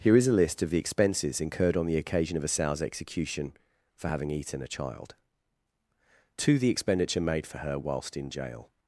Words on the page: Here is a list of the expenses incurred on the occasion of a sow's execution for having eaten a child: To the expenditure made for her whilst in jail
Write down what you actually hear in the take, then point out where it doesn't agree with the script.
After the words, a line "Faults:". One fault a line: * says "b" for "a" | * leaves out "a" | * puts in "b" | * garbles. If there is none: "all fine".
Here is a list of the expenses incurred on the occasion of a sow's execution for having eaten a child: To the expenditure made for her whilst in jail
Faults:
all fine